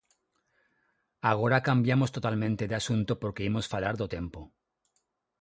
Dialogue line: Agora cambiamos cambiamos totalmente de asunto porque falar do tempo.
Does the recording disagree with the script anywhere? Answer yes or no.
yes